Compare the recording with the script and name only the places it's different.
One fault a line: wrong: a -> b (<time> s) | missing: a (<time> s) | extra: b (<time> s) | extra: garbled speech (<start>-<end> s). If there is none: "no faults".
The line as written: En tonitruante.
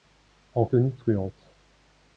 no faults